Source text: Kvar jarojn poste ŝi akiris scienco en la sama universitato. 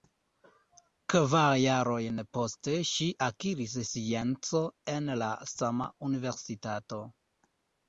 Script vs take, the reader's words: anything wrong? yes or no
no